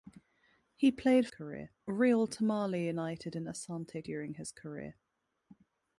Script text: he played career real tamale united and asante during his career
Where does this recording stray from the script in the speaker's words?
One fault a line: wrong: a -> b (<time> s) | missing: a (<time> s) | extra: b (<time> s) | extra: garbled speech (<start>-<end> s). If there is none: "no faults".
no faults